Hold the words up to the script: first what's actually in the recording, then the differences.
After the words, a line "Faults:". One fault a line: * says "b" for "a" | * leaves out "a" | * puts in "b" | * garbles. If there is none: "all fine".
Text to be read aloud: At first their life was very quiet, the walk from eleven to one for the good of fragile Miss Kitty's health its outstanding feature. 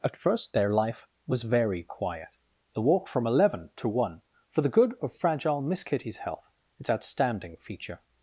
At first their life was very quiet, the walk from eleven to one for the good of fragile Miss Kitty's health its outstanding feature.
Faults:
all fine